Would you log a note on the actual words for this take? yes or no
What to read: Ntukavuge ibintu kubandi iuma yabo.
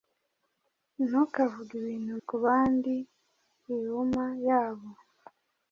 no